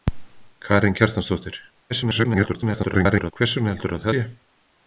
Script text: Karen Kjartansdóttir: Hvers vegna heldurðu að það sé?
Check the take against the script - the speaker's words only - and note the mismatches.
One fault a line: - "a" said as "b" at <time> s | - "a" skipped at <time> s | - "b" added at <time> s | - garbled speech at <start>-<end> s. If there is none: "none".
- garbled speech at 1.9-3.3 s
- "það" skipped at 4.1 s